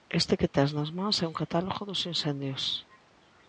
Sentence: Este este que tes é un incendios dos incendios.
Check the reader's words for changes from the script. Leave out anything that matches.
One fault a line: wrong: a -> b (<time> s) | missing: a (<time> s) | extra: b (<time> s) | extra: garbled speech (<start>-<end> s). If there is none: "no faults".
missing: este (0.3 s)
extra: nas mans (0.8 s)
wrong: incendios -> catálogo (1.4 s)